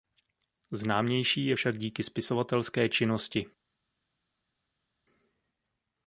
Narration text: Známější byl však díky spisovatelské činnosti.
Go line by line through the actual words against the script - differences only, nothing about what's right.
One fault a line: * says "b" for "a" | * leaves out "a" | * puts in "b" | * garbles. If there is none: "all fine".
* says "je" for "byl"